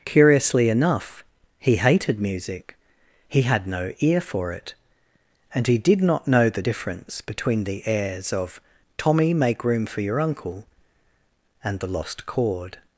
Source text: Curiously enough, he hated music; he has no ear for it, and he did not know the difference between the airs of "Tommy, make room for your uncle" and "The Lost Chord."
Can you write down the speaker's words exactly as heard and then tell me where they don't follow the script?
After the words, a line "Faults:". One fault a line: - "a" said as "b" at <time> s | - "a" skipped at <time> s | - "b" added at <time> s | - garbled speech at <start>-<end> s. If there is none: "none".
Curiously enough, he hated music; he had no ear for it, and he did not know the difference between the airs of "Tommy, make room for your uncle" and "The Lost Chord."
Faults:
- "has" said as "had" at 3.4 s